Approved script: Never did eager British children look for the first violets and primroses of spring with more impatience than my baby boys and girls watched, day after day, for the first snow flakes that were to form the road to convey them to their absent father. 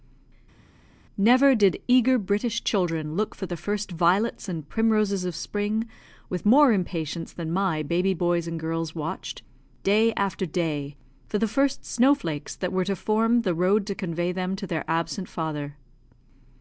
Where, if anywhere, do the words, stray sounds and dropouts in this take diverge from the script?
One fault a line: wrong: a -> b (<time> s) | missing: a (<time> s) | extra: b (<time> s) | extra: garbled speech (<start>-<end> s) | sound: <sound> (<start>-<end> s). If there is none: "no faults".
no faults